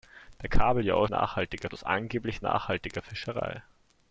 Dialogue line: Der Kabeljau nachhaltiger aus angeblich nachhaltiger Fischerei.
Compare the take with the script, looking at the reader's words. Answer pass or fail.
pass